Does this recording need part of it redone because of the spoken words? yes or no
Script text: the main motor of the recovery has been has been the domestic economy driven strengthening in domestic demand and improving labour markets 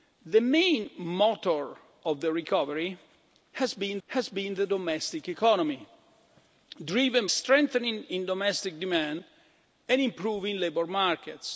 no